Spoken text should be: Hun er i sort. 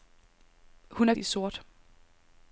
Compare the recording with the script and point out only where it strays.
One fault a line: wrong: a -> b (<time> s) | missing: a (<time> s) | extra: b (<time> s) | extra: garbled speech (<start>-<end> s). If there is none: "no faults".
no faults